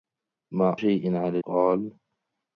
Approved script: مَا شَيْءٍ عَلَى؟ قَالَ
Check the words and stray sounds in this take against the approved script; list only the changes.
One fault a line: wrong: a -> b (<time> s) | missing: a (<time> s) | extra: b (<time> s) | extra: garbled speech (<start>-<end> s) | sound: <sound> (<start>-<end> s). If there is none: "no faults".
no faults